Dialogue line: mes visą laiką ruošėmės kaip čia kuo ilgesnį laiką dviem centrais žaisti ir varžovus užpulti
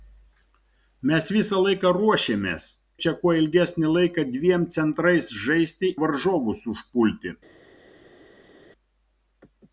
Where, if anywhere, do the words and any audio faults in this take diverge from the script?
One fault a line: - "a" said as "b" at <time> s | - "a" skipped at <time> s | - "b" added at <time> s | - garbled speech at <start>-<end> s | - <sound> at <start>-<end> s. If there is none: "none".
- "kaip" skipped at 2.6 s
- "ir" skipped at 5.9 s